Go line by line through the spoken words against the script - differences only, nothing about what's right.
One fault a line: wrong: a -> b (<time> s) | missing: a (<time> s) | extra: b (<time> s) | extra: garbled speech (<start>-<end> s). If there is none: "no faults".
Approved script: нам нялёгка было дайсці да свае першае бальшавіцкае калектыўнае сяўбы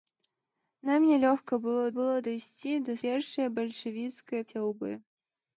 extra: было (2.0 s)
missing: свае (2.9 s)
missing: калектыўнае (4.4 s)